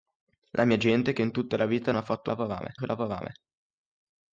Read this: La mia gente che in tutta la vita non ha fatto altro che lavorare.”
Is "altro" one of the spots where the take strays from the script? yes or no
yes